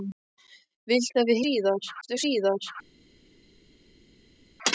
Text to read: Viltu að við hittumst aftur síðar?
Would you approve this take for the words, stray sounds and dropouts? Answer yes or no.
no